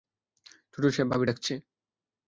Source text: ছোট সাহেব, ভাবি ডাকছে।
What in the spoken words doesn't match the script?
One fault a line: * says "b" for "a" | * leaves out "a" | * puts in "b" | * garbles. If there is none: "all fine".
all fine